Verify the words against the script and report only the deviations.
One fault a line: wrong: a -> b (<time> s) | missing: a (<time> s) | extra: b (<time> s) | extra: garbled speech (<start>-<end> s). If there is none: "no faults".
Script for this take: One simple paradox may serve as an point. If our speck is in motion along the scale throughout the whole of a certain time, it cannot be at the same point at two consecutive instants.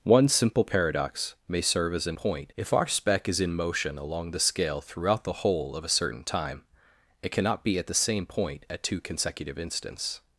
no faults